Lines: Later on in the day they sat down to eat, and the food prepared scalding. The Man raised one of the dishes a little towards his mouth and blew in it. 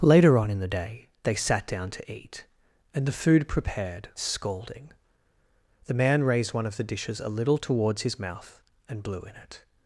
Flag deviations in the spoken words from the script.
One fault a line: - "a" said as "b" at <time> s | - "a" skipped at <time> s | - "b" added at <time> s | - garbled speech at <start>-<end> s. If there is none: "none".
none